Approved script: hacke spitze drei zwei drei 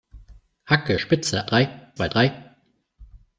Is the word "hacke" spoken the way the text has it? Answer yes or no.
yes